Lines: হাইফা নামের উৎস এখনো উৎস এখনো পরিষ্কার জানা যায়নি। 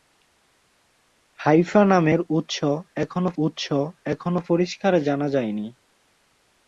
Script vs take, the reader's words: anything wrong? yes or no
no